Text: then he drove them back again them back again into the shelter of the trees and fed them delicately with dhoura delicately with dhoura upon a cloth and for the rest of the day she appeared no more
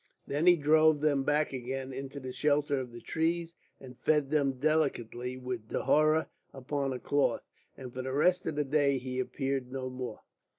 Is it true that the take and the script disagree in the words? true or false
true